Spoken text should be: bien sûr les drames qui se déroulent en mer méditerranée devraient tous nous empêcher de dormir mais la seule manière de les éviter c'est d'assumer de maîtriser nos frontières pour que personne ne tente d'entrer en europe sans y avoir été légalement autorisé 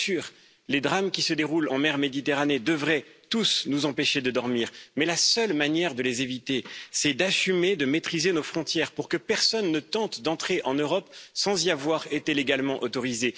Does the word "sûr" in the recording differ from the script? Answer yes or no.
no